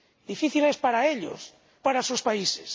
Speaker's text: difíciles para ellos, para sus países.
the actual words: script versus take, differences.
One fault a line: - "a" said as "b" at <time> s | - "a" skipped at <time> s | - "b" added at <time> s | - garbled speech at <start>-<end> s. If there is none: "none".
none